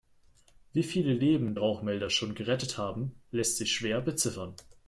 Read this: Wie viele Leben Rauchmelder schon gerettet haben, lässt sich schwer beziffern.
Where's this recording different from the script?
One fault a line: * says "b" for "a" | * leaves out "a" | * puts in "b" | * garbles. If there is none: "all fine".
all fine